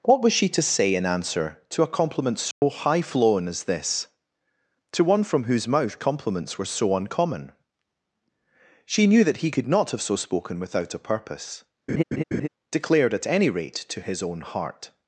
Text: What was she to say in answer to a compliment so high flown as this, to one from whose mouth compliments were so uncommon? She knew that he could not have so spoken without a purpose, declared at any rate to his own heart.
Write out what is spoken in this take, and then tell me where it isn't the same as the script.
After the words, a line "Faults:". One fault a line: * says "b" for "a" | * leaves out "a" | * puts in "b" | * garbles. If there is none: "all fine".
What was she to say in answer to a compliment so high flown as this, to one from whose mouth compliments were so uncommon? She knew that he could not have so spoken without a purpose, declared at any rate to his own heart.
Faults:
all fine